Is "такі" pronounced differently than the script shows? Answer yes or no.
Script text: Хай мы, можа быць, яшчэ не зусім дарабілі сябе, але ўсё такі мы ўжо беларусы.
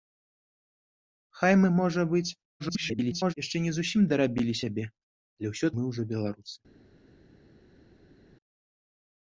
yes